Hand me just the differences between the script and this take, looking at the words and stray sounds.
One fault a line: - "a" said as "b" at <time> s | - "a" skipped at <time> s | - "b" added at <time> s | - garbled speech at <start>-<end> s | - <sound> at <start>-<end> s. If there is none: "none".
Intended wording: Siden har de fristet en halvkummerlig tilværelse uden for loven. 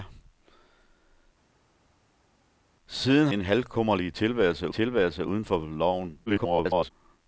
- "har de fristet" skipped at 3.3 s
- "tilværelse" added at 4.7 s
- garbled speech at 6.3-6.9 s